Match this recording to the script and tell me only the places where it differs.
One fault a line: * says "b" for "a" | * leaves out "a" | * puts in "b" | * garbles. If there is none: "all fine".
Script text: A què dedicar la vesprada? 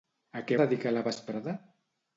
all fine